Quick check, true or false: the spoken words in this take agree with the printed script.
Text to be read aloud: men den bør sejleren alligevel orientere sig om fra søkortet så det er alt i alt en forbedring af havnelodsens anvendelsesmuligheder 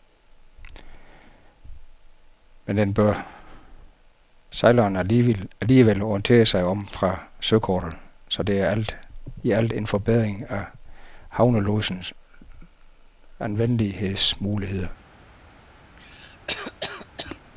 true